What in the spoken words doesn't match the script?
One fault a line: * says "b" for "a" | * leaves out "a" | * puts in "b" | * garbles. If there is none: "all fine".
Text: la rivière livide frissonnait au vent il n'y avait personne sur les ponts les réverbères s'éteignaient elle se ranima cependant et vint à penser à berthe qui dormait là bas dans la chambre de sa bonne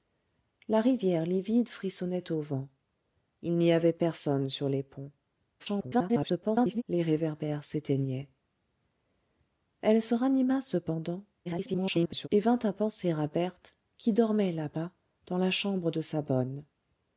* garbles
* garbles